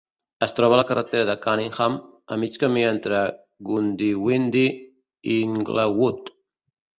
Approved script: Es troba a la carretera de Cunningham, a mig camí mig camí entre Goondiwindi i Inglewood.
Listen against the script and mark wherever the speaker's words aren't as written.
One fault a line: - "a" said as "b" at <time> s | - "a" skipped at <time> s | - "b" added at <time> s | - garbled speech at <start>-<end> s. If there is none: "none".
- "mig camí" skipped at 2.8 s